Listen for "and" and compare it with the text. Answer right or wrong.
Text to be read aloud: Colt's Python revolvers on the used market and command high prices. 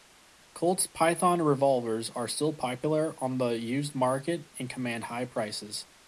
right